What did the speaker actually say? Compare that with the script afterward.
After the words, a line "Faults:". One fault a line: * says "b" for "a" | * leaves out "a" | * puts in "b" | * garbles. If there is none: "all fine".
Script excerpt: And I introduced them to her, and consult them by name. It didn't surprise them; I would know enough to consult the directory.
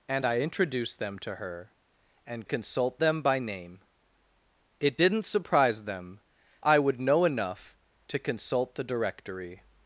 And I introduced them to her, and consult them by name. It didn't surprise them; I would know enough to consult the directory.
Faults:
all fine